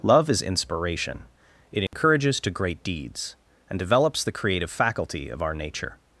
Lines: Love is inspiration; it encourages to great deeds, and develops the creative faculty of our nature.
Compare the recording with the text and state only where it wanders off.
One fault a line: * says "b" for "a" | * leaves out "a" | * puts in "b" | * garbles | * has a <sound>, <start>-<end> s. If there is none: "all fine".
* has a dropout, 1.9-1.9 s